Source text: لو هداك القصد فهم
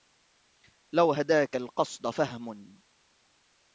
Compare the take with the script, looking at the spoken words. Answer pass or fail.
pass